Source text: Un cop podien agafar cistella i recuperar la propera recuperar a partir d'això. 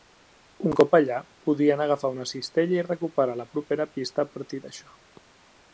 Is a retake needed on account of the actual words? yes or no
yes